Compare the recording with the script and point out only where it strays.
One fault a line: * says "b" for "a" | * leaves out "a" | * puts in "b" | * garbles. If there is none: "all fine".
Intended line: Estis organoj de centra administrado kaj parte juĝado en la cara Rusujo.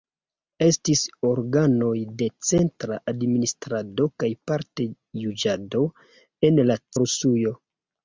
* leaves out "cara"